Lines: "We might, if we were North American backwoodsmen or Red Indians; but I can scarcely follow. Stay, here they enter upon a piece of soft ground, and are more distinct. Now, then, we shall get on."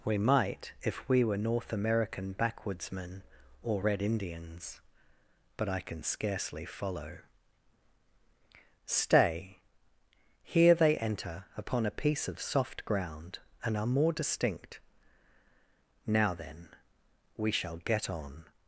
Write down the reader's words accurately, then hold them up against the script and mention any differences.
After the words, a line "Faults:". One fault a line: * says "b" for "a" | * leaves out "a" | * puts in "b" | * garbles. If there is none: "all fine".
"We might, if we were North American backwoodsmen or Red Indians; but I can scarcely follow. Stay, here they enter upon a piece of soft ground, and are more distinct. Now, then, we shall get on."
Faults:
all fine